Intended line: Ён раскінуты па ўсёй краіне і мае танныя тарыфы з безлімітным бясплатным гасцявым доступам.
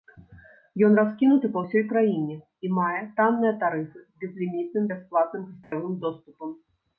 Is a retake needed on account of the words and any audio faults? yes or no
yes